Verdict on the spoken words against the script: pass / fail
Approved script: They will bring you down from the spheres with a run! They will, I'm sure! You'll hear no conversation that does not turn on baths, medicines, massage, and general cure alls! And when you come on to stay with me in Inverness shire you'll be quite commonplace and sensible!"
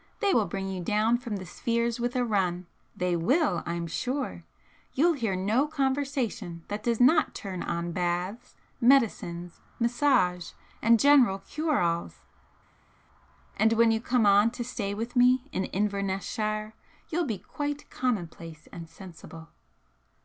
pass